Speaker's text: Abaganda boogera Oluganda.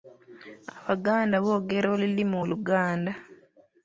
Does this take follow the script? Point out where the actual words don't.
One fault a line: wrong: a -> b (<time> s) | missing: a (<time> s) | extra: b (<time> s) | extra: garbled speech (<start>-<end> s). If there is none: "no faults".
extra: olulimi (1.9 s)